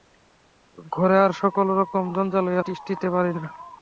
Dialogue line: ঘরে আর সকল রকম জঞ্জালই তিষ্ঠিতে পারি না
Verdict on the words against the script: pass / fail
pass